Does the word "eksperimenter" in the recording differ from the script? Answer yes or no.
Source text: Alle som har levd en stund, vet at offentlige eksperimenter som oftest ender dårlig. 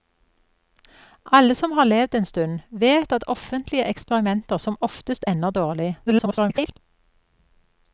no